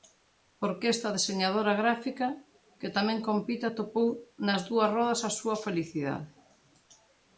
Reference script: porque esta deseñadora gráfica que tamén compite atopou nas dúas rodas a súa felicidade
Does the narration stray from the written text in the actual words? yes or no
no